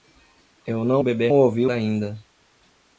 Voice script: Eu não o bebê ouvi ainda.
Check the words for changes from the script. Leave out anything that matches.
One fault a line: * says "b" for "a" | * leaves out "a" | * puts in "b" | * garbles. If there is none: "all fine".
all fine